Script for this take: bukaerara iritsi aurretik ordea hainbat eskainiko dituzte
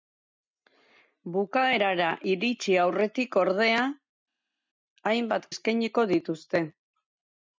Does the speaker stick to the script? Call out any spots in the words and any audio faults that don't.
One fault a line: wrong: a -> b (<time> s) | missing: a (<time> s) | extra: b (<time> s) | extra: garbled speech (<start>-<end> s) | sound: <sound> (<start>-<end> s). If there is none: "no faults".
no faults